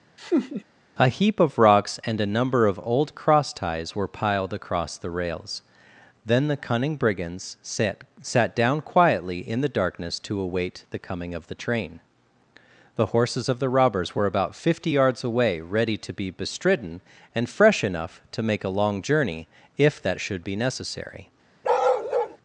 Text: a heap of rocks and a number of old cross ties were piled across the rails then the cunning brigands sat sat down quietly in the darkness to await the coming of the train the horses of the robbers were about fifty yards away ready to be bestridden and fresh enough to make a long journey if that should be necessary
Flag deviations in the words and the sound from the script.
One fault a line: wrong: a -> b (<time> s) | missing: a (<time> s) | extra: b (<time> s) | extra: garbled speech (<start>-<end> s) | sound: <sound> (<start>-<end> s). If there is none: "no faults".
sound: laugh (0.2-0.6 s)
sound: bark (21.6-22.4 s)